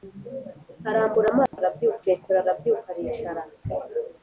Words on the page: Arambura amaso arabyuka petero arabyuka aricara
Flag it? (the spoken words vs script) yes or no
no